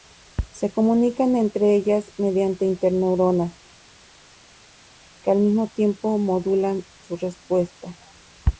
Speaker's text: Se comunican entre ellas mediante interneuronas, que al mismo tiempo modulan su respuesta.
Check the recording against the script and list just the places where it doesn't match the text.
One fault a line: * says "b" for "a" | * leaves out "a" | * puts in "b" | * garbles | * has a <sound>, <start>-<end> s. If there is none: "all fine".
all fine